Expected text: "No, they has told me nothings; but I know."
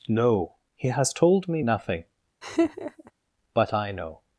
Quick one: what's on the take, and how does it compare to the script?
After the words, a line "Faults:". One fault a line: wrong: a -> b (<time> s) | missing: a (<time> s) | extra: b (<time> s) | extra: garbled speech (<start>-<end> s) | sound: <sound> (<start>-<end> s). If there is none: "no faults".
"No, he has told me nothing; but I know."
Faults:
wrong: they -> he (0.8 s)
wrong: nothings -> nothing (1.6 s)
sound: laugh (2.4-3.1 s)